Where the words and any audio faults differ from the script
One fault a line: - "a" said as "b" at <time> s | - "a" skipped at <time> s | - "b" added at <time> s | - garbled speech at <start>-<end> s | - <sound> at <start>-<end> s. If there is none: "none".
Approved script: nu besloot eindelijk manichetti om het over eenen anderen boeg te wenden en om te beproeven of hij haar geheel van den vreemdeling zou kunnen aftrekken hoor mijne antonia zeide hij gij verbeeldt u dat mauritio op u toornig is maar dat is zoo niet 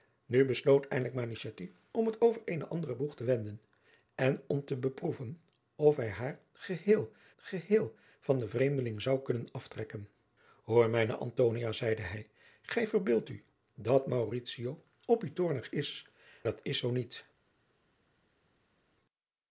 - "geheel" added at 7.4 s
- "maar" skipped at 16.1 s